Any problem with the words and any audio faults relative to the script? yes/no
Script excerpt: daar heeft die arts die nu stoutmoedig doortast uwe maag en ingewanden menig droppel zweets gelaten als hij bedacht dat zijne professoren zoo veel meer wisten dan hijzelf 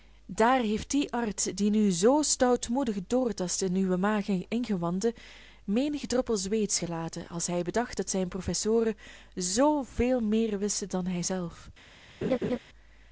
yes